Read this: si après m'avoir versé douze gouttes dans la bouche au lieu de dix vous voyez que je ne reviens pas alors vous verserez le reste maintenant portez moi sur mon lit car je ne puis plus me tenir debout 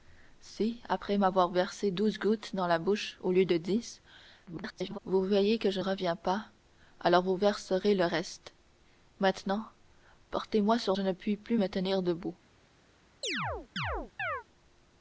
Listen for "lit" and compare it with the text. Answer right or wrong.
wrong